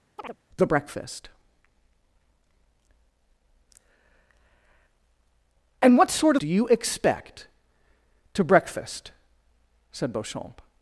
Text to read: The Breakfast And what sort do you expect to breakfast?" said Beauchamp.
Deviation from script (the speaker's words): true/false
false